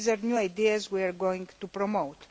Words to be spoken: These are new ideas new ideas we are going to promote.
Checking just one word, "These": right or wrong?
right